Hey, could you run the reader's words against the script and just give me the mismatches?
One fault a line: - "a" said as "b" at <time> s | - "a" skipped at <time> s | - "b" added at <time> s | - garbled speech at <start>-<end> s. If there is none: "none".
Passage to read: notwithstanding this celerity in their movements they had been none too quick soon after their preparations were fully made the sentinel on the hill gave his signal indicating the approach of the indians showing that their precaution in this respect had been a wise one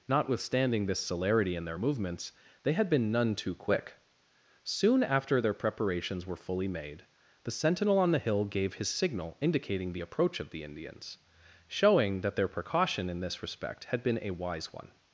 none